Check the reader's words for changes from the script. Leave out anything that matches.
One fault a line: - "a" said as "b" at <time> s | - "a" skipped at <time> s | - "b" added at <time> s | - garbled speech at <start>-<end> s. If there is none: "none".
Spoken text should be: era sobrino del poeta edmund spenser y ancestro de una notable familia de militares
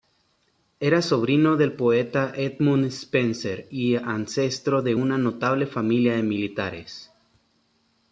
none